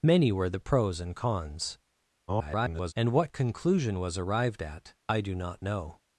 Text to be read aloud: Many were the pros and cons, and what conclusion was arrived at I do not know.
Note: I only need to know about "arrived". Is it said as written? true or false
true